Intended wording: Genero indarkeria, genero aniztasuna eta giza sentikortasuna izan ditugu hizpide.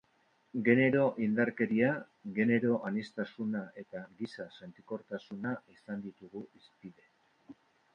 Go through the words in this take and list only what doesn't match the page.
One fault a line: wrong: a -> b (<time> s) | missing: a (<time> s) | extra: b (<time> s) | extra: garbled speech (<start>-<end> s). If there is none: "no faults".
no faults